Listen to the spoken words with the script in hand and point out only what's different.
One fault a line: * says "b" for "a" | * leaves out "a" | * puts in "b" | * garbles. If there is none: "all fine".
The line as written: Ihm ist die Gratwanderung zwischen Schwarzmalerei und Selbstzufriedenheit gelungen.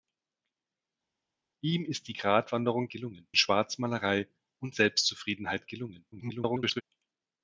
* says "gelungen" for "zwischen"
* garbles